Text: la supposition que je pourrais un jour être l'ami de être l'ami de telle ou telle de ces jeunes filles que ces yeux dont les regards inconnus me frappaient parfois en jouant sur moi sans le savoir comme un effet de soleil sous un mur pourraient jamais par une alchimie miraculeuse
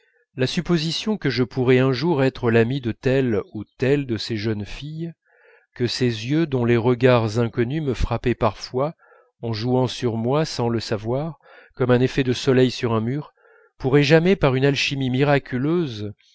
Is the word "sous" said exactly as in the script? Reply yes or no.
no